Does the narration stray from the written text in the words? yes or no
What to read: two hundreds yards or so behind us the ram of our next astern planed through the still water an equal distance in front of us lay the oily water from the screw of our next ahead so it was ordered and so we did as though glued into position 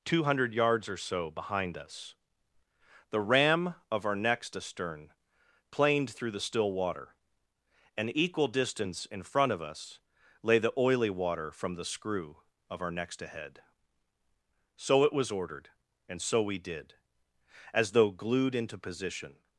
yes